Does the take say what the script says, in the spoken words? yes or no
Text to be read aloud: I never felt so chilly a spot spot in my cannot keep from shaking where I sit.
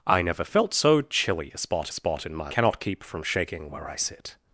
yes